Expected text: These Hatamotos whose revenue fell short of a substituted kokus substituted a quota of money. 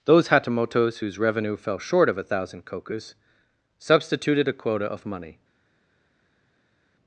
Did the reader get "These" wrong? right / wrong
wrong